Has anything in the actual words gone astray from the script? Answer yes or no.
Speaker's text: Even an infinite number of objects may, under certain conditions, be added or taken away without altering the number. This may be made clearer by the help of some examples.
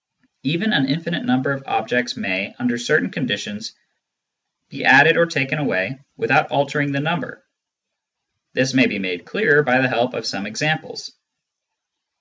no